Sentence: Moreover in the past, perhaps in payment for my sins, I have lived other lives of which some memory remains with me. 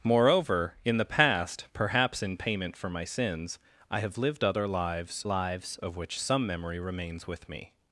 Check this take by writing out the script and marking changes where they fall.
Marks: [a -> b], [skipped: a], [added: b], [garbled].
Moreover in the past, perhaps in payment for my sins, I have lived other lives [added: lives] of which some memory remains with me.